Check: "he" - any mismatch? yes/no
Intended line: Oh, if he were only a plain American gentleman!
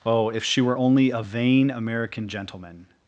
yes